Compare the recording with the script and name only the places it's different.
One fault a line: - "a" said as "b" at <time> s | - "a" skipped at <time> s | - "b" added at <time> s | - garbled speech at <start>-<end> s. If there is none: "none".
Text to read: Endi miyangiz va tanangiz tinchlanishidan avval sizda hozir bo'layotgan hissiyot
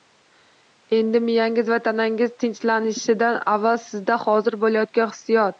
none